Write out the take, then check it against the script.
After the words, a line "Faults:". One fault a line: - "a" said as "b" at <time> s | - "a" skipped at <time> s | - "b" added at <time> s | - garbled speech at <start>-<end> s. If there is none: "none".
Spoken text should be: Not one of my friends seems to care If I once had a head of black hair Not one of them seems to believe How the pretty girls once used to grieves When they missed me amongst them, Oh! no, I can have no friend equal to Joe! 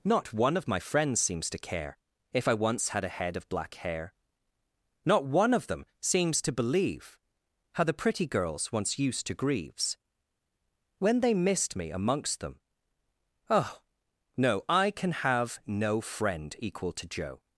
Not one of my friends seems to care If I once had a head of black hair Not one of them seems to believe How the pretty girls once used to grieves When they missed me amongst them, Oh! no, I can have no friend equal to Joe!
Faults:
none